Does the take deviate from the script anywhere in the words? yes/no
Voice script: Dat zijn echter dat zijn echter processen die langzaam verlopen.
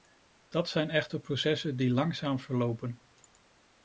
yes